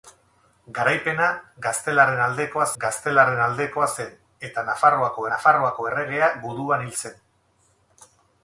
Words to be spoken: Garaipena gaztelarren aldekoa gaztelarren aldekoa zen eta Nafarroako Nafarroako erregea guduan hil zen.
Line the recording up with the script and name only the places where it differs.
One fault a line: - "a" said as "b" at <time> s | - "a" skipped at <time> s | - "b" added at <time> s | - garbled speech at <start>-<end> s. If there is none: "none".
none